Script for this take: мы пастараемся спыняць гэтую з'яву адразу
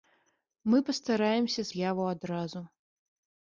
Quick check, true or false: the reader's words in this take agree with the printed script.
false